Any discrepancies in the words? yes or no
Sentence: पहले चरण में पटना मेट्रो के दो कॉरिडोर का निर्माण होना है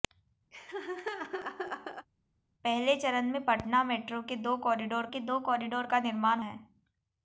yes